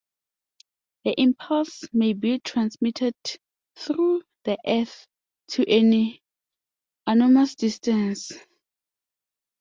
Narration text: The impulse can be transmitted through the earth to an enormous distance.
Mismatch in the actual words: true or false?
true